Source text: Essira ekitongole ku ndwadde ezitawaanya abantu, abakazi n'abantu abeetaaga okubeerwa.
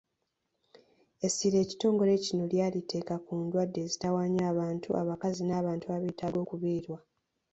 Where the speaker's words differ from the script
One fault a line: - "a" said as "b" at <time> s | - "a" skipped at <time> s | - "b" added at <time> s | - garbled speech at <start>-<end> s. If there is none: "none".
- "kino lyaliteeka" added at 2.2 s